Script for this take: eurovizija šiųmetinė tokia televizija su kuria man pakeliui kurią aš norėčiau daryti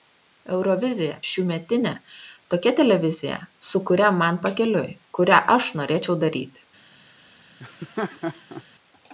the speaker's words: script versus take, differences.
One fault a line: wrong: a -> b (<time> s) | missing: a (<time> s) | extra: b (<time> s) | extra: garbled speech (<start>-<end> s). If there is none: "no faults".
no faults